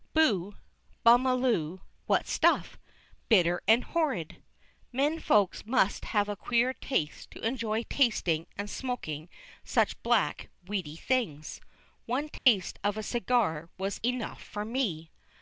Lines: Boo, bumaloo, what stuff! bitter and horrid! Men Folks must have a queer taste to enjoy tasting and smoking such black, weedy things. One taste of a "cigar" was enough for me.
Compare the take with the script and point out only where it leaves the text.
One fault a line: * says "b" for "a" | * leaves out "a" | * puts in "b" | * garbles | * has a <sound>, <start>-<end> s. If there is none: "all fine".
* has a dropout, 12.4-12.5 s